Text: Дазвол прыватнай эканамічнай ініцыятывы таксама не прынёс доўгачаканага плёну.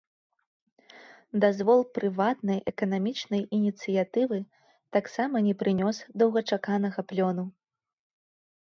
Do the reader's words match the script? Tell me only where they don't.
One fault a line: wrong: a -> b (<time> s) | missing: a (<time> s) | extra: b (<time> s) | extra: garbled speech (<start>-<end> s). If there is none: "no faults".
no faults